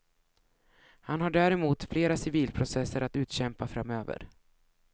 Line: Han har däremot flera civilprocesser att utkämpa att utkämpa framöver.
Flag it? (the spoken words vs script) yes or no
yes